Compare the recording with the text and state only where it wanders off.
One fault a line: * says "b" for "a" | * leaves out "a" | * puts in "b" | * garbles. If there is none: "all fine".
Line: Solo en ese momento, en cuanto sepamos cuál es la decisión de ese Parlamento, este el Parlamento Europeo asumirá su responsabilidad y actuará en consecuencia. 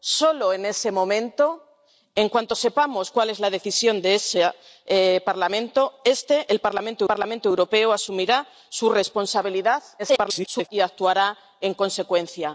* puts in "Parlamento"
* garbles